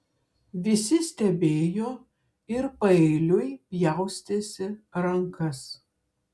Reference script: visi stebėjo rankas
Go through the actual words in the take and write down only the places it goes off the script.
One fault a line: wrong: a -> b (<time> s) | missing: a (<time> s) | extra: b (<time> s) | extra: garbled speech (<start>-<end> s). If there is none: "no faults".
extra: ir paeiliui pjaustėsi (2.5 s)